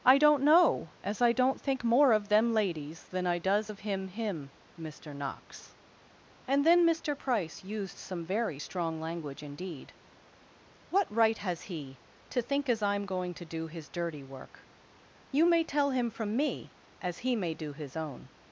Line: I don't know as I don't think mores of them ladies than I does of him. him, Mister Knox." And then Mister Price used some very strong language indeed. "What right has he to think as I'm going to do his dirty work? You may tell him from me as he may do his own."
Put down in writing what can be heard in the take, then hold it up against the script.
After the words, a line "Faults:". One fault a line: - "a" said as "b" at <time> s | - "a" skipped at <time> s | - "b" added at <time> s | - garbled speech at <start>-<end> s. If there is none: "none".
I don't know as I don't think more of them ladies than I does of him. him, Mister Knox." And then Mister Price used some very strong language indeed. "What right has he to think as I'm going to do his dirty work? You may tell him from me as he may do his own."
Faults:
- "mores" said as "more" at 1.8 s